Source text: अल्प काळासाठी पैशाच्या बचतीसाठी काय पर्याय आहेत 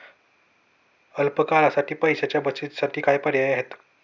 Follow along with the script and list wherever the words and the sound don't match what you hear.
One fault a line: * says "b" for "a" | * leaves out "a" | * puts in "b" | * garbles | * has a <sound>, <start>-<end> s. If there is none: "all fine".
all fine